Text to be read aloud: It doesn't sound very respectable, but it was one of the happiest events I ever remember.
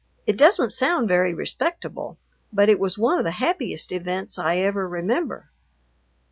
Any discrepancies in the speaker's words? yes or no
no